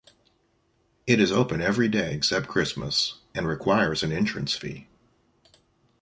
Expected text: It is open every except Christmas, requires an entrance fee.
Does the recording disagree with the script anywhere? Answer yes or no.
yes